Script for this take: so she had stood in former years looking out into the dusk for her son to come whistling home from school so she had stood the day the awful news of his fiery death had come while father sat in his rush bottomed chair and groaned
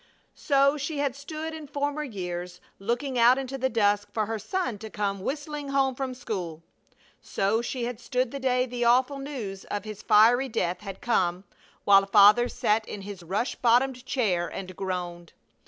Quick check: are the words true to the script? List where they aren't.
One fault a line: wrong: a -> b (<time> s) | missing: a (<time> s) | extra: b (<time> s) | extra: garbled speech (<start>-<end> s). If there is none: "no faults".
no faults